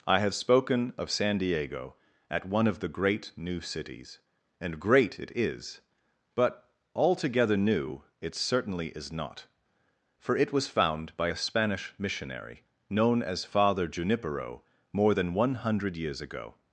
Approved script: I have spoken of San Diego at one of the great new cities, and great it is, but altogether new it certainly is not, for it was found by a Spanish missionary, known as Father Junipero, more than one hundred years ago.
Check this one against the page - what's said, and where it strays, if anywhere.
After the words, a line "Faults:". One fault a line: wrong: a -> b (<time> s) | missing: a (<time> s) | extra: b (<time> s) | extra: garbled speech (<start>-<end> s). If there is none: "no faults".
I have spoken of San Diego at one of the great new cities, and great it is, but altogether new it certainly is not, for it was found by a Spanish missionary, known as Father Junipero, more than one hundred years ago.
Faults:
no faults